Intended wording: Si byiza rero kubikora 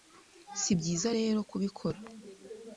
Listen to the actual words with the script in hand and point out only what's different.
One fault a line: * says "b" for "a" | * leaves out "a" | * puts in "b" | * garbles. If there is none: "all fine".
all fine